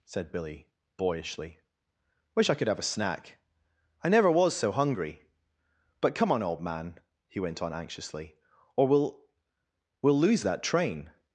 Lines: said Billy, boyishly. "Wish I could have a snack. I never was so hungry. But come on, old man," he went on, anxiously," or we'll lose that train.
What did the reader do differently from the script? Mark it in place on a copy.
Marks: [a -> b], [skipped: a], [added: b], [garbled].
said Billy, boyishly. "Wish I could have a snack. I never was so hungry. But come on, old man," he went on, anxiously," or we'll [added: we'll] lose that train.